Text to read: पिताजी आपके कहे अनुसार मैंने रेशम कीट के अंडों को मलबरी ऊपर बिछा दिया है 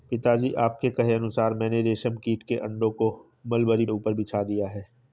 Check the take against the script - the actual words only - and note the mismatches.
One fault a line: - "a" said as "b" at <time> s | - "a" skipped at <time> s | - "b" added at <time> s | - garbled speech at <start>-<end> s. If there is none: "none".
none